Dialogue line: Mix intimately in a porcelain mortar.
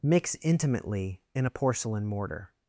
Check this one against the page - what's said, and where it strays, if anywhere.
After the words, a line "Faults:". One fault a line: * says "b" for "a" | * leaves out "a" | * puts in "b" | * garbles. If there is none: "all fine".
Mix intimately in a porcelain mortar.
Faults:
all fine